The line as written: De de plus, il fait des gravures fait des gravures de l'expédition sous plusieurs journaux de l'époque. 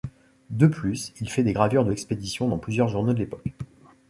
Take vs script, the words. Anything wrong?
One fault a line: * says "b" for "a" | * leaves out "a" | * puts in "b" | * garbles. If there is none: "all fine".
* leaves out "de"
* leaves out "fait des gravures"
* says "dans" for "sous"